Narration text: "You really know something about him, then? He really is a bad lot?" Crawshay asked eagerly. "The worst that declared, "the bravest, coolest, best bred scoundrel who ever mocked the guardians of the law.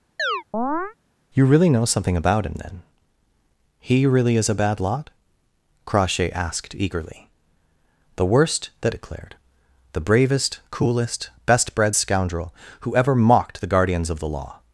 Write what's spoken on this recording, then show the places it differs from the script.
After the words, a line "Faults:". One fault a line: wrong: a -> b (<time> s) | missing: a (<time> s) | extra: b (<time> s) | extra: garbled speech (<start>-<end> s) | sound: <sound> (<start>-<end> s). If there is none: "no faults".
"You really know something about him, then? He really is a bad lot?" Crawshay asked eagerly. "The worst that declared, "the bravest, coolest, best bred scoundrel who ever mocked the guardians of the law.
Faults:
sound: chirp (0.2-0.9 s)